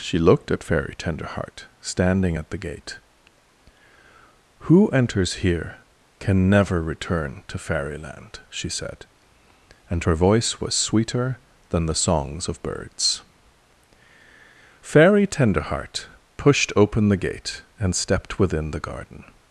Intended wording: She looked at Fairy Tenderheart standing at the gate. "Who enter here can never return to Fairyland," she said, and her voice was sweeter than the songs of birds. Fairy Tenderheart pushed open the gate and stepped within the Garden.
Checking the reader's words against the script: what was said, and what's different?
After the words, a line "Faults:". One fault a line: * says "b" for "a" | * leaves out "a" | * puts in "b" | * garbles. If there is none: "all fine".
She looked at Fairy Tenderheart standing at the gate. "Who enters here can never return to Fairyland," she said, and her voice was sweeter than the songs of birds. Fairy Tenderheart pushed open the gate and stepped within the Garden.
Faults:
* says "enters" for "enter"